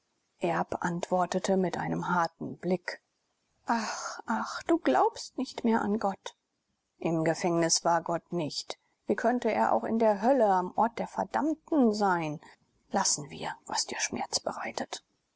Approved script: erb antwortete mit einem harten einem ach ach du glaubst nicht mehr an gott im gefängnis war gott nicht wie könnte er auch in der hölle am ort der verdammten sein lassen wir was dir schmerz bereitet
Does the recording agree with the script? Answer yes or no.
no